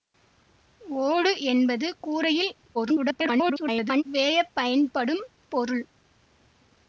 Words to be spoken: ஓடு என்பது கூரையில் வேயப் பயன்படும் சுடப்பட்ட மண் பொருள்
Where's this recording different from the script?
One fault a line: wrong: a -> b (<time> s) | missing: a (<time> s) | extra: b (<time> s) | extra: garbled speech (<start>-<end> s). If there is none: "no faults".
extra: garbled speech (2.7-4.0 s)
missing: சுடப்பட்ட மண் (5.2 s)